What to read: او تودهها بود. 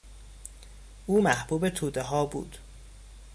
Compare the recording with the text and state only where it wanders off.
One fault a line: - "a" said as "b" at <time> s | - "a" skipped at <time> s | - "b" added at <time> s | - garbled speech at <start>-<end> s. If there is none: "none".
- "محبوب" added at 1.2 s